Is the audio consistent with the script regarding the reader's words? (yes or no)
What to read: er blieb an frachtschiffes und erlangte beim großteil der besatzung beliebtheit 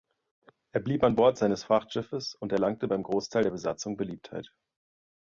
no